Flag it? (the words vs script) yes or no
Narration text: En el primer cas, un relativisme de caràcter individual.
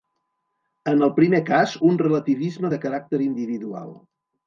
no